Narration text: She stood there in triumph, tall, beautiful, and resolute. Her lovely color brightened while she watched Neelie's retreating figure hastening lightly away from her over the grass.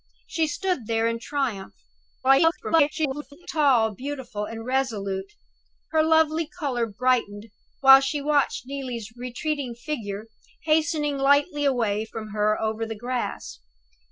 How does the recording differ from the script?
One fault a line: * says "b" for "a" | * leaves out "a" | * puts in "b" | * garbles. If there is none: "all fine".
* garbles